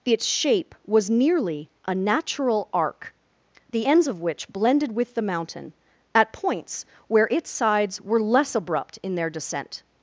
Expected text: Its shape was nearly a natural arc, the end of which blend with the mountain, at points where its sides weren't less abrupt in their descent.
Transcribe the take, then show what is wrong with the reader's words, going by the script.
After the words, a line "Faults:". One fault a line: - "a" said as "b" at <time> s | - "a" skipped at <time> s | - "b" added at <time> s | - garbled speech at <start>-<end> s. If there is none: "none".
Its shape was nearly a natural arc, the ends of which blended with the mountain, at points where its sides were less abrupt in their descent.
Faults:
- "end" said as "ends" at 3.8 s
- "blend" said as "blended" at 4.5 s
- "weren't" said as "were" at 8.0 s